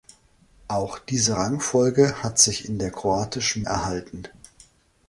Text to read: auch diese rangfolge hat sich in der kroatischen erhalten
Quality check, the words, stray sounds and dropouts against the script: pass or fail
pass